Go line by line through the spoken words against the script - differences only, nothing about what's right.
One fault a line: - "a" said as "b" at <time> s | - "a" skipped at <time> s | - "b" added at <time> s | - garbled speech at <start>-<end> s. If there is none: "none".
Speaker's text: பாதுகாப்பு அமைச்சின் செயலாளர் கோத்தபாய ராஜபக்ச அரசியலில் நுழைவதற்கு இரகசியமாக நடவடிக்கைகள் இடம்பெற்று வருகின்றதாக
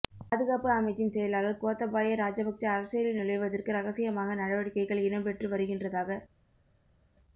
none